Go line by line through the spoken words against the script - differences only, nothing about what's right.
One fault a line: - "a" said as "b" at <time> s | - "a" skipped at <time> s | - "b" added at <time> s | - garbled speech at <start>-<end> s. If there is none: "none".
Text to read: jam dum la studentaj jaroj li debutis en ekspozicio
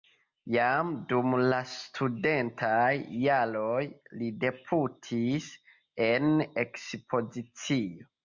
none